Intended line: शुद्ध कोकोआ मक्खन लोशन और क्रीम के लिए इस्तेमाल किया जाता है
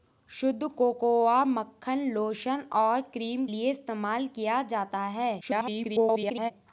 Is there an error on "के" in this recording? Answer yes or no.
yes